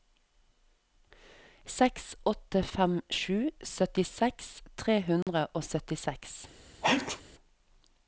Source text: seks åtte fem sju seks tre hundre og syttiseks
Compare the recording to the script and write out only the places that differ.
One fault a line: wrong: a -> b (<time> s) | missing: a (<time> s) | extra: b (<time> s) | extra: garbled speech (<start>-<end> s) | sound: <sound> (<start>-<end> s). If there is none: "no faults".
wrong: seks -> syttiseks (3.8 s)
sound: dropout (5.2-5.3 s)
sound: sneeze (6.8-7.2 s)